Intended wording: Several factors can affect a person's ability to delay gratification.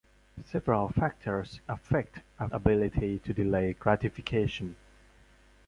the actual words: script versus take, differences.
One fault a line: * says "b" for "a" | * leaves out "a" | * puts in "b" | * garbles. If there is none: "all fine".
* leaves out "can"
* leaves out "person's"